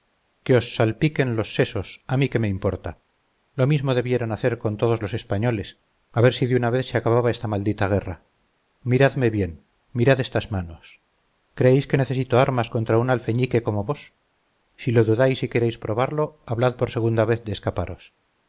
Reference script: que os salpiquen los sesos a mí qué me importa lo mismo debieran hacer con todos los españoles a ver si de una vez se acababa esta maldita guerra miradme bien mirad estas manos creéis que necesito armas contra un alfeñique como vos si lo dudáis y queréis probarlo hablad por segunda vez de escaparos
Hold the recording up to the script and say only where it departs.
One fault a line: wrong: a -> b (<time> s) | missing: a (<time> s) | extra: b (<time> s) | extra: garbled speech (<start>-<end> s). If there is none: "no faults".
no faults